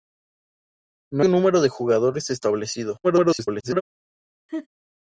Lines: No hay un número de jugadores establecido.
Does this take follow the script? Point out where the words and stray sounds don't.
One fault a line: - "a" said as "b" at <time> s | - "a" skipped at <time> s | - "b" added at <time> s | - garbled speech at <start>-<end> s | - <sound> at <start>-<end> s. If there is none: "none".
- "hay" skipped at 1.2 s
- garbled speech at 3.0-3.8 s
- laugh at 4.5-4.7 s